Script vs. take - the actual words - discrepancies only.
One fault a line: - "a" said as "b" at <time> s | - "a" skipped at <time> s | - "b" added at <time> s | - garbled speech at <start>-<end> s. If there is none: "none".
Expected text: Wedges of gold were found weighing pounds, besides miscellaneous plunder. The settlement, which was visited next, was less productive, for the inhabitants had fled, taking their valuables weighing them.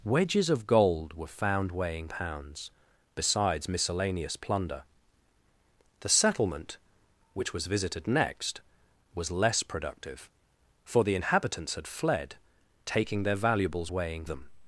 none